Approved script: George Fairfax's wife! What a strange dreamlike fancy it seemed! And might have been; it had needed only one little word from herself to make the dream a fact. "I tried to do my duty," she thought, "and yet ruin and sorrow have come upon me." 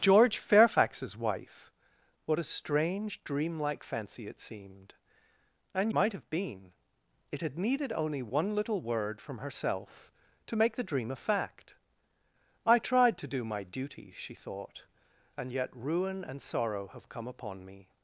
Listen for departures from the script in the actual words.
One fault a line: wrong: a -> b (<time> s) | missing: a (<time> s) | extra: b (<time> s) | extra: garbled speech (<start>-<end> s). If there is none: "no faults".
no faults